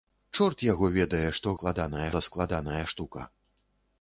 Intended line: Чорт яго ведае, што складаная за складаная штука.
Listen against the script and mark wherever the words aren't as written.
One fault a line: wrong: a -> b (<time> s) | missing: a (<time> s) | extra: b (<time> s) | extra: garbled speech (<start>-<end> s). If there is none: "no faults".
no faults